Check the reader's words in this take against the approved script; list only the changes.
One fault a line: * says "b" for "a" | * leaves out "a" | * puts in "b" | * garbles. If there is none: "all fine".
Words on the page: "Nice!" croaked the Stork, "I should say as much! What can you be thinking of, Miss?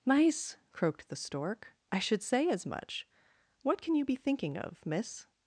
all fine